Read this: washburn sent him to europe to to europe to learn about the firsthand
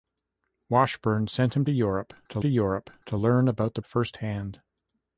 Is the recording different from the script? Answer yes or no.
no